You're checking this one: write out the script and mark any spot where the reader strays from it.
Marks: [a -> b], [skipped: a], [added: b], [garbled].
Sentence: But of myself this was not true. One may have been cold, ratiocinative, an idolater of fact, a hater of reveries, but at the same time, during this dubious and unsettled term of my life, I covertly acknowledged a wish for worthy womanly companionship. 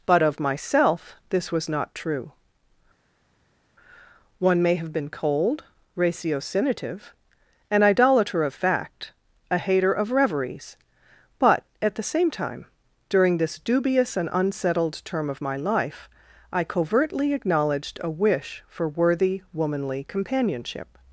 But of myself this was not true. One may have been cold, ratiocinative, an idolater of fact, a hater of reveries, but at the same time, during this dubious and unsettled term of my life, I covertly acknowledged a wish for worthy womanly companionship.